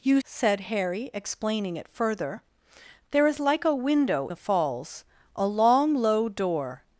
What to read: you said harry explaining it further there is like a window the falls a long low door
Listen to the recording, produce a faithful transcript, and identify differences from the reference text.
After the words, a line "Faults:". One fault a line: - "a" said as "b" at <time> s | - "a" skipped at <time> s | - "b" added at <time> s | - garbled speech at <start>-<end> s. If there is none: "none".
you said harry explaining it further there is like a window the falls a long low door
Faults:
none